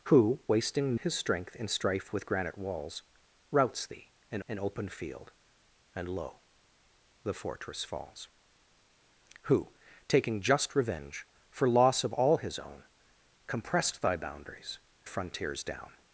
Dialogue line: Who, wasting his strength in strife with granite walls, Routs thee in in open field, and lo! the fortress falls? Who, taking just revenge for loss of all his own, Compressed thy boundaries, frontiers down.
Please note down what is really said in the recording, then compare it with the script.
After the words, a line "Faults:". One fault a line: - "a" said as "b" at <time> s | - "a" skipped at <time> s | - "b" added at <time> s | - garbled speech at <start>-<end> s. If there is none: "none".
Who, wasting his strength in strife with granite walls, Routs thee in in open field, and lo! the fortress falls? Who, taking just revenge for loss of all his own, Compressed thy boundaries, frontiers down.
Faults:
none